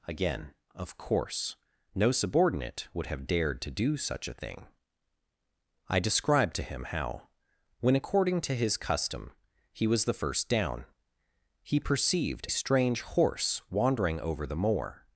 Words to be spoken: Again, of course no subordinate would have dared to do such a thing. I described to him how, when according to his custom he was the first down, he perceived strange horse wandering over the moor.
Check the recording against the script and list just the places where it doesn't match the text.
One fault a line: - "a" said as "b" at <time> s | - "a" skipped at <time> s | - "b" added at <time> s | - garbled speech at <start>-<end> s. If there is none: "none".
none